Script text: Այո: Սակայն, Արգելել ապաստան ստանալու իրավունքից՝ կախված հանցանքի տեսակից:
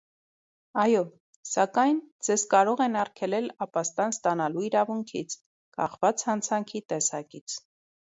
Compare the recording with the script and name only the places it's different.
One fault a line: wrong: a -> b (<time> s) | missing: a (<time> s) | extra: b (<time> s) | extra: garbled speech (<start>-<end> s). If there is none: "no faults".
extra: Ձեզ կարող են (2.3 s)